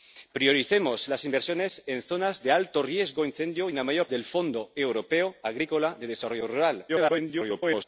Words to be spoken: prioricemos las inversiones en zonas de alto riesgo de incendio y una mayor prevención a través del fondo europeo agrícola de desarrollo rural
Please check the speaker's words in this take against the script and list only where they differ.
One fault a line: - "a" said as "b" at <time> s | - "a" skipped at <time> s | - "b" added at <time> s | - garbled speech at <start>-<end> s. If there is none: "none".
- "prevención a través" skipped at 4.1 s
- garbled speech at 6.9-7.8 s